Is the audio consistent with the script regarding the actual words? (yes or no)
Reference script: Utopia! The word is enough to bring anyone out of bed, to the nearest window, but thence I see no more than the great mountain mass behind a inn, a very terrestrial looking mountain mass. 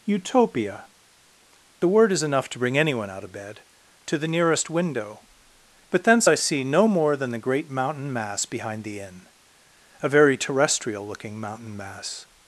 no